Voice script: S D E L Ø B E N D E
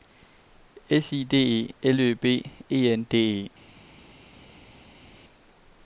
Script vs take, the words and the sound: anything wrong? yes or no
yes